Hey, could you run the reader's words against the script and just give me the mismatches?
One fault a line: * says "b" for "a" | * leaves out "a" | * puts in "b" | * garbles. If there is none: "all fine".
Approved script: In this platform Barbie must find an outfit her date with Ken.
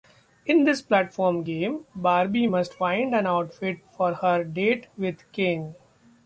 * puts in "game"
* puts in "for"